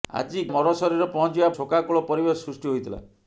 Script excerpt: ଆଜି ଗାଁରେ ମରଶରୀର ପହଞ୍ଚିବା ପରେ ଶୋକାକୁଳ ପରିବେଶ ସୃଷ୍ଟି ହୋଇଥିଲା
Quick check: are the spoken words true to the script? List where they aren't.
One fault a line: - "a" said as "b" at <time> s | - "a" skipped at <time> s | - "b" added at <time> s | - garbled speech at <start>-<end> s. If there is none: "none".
- "ଗାଁରେ" skipped at 0.4 s
- "ପରେ" skipped at 1.5 s